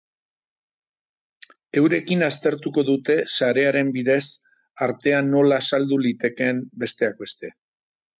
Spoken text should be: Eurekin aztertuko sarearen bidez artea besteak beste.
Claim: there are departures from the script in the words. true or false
true